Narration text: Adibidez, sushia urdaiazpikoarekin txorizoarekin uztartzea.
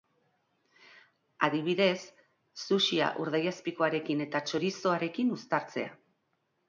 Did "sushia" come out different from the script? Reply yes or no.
no